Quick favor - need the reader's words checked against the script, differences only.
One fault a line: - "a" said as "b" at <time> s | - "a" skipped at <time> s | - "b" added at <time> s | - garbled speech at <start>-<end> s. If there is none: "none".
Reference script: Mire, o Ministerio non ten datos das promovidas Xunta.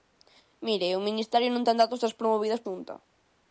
none